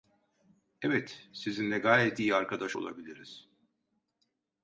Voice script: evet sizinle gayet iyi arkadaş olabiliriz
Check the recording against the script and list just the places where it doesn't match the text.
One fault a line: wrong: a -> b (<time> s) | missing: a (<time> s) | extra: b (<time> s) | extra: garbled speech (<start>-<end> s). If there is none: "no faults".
no faults